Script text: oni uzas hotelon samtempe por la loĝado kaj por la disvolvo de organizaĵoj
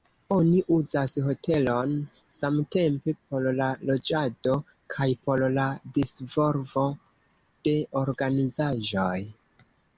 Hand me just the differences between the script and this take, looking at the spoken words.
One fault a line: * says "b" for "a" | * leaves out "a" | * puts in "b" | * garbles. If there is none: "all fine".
all fine